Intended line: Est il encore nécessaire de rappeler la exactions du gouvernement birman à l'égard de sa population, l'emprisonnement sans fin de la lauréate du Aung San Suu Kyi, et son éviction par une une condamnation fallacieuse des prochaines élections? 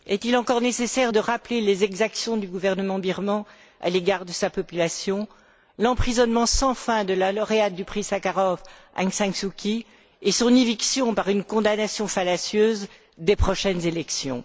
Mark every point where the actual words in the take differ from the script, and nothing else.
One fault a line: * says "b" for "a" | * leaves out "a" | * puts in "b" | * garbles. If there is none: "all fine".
* says "les" for "la"
* puts in "prix Sakharov"
* leaves out "une"